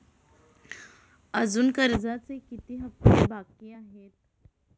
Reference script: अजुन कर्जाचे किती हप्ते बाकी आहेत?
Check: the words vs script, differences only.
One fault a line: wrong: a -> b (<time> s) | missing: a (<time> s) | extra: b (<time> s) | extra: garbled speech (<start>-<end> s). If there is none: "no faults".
no faults